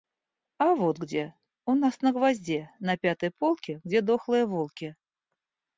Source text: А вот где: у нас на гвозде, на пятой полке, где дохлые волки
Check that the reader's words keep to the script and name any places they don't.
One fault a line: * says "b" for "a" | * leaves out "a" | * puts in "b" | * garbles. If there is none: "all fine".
all fine